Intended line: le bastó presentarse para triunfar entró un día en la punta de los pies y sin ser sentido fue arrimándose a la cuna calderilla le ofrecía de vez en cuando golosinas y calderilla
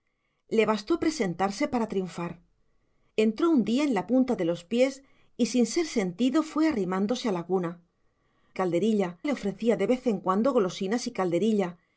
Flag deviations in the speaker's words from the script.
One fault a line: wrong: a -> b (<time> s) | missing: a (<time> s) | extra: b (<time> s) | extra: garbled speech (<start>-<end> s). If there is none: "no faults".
no faults